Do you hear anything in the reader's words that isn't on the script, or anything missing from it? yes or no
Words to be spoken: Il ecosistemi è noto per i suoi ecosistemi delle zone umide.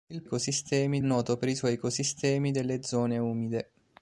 no